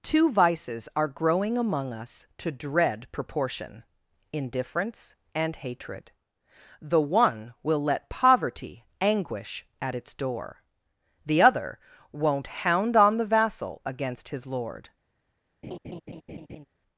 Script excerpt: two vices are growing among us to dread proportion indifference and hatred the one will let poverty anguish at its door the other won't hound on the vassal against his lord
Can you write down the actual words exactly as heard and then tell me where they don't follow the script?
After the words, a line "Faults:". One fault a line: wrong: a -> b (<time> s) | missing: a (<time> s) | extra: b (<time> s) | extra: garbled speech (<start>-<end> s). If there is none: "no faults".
two vices are growing among us to dread proportion indifference and hatred the one will let poverty anguish at its door the other won't hound on the vassal against his lord
Faults:
no faults